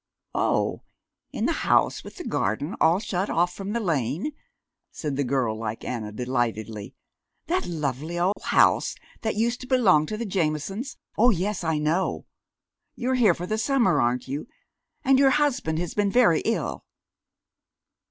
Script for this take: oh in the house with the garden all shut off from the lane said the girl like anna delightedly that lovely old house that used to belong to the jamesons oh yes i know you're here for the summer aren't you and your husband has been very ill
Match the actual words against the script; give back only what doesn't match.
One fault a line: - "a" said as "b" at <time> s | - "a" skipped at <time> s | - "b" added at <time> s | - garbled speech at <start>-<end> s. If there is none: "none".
none